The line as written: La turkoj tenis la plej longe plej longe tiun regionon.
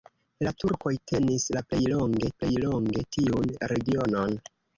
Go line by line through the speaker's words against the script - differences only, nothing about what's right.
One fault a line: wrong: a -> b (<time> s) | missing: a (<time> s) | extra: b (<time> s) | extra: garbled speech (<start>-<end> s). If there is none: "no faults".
no faults